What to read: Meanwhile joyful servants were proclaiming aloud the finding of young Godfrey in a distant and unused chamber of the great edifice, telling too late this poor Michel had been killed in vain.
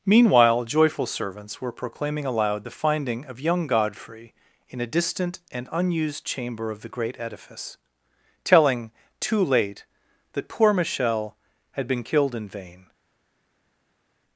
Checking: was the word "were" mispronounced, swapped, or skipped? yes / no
no